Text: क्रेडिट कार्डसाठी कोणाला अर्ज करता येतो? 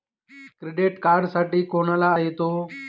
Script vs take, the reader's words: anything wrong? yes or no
yes